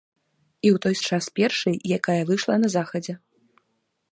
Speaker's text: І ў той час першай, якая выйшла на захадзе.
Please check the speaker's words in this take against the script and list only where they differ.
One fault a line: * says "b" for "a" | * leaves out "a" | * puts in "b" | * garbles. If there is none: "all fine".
all fine